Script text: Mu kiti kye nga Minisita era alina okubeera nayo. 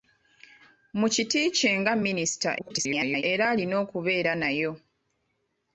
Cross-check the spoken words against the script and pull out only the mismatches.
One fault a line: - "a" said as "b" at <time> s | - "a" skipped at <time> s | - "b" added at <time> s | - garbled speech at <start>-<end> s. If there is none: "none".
- garbled speech at 2.6-3.2 s